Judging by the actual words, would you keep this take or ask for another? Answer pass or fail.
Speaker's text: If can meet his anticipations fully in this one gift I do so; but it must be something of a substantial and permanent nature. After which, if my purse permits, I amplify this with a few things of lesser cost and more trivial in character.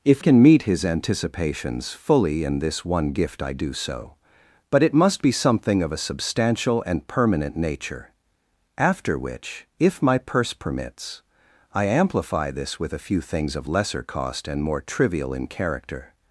pass